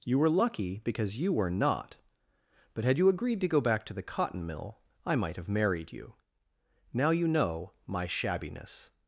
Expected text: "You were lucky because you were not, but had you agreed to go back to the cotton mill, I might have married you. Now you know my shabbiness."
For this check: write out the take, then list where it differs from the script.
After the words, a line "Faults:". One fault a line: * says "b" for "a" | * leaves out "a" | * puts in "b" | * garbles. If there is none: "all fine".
"You were lucky because you were not, but had you agreed to go back to the cotton mill, I might have married you. Now you know my shabbiness."
Faults:
all fine